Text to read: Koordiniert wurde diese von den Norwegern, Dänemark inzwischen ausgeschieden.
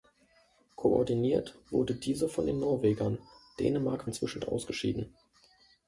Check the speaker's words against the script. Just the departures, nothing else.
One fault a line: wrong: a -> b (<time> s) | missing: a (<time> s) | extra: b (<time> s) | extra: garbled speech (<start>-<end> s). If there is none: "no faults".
no faults